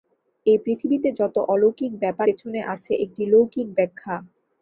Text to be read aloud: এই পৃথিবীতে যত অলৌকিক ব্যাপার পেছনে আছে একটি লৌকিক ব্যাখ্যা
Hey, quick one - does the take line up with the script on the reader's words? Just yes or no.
yes